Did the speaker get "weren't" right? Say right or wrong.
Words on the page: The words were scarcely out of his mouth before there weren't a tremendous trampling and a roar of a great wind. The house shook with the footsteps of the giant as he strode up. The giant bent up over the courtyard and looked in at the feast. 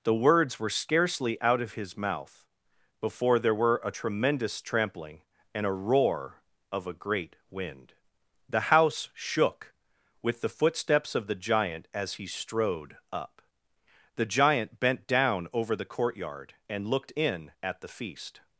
wrong